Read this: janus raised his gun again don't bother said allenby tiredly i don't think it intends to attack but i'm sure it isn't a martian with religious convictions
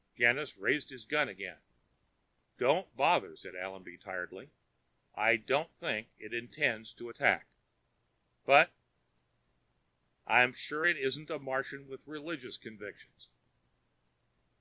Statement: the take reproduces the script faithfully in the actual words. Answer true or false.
true